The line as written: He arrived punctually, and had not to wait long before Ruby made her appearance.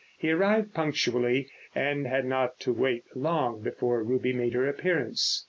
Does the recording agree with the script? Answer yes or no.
yes